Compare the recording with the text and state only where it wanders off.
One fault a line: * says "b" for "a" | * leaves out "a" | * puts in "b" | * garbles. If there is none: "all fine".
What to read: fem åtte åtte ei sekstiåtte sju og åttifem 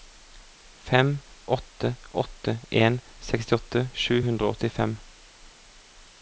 * says "en" for "ei"
* puts in "hundre"